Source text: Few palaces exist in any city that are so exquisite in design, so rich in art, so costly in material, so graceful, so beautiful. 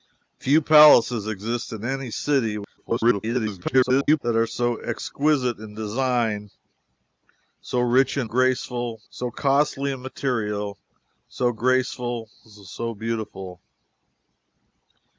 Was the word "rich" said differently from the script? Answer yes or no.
no